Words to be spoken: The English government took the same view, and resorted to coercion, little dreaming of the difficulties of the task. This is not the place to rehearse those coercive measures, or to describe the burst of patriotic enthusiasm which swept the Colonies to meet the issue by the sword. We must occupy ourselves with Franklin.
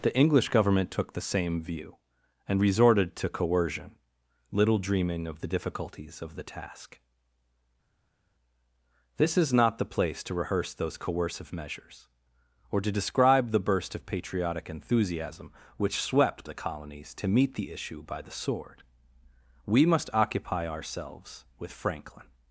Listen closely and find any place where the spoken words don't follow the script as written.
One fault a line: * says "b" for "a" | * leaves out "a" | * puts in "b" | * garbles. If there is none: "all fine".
all fine